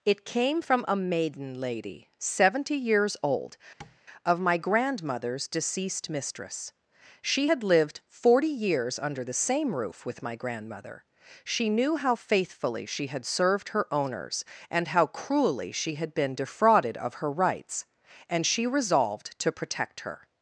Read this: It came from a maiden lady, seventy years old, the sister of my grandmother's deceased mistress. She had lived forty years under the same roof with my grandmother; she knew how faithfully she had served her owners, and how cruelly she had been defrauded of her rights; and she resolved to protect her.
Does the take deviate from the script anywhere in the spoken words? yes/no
yes